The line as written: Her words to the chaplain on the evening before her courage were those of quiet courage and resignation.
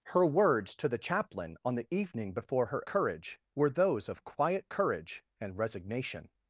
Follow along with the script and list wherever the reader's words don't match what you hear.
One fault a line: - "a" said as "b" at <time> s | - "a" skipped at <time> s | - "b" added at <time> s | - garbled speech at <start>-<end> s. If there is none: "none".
none